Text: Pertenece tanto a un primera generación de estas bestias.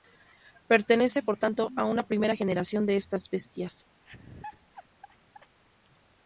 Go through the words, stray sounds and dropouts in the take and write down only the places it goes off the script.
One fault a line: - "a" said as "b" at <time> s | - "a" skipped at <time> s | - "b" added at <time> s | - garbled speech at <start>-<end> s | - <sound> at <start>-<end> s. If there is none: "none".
- "por" added at 1.2 s
- "un" said as "una" at 1.9 s
- laugh at 4.0-5.6 s